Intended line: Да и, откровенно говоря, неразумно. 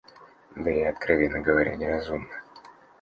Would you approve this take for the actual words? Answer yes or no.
yes